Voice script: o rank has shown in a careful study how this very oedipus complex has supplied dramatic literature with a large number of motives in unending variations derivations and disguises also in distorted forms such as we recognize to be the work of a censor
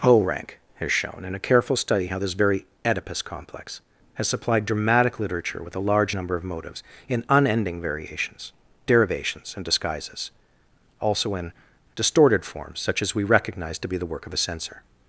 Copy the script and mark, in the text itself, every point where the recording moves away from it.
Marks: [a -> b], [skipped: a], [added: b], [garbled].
o rank has shown in a careful study how this very oedipus complex has supplied dramatic literature with a large number of motives in unending variations derivations and disguises also in distorted forms such as we recognize to be the work of a censor